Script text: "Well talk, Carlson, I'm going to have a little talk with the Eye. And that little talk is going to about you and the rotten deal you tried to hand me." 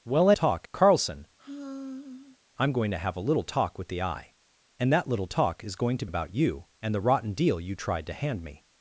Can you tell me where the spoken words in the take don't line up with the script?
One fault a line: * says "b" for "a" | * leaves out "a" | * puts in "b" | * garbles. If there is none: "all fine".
all fine